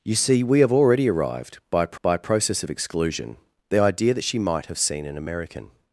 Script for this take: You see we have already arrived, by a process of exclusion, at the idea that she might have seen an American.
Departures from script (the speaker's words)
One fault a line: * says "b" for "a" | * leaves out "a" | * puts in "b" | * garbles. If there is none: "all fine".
* puts in "by a"
* leaves out "at"